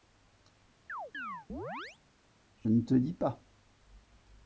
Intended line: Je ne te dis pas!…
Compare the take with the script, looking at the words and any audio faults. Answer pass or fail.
fail